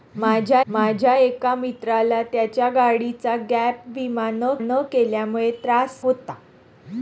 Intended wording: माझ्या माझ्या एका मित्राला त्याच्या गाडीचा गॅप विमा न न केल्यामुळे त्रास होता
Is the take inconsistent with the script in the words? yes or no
no